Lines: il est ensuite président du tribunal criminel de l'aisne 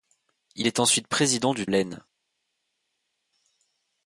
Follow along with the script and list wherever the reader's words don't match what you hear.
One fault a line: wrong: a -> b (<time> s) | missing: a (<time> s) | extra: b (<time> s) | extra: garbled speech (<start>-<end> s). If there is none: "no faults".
missing: tribunal criminel de (1.7 s)